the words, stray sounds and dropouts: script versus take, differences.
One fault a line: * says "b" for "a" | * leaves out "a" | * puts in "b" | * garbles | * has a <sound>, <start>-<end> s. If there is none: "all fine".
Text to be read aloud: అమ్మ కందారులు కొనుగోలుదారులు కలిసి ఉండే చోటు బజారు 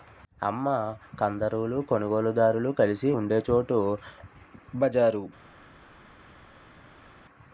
all fine